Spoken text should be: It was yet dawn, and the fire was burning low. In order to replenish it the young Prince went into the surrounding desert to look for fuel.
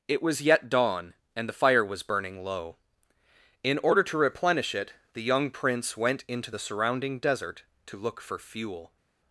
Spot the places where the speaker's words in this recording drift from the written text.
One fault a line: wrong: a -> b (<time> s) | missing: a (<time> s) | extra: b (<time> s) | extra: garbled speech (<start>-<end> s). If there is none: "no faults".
no faults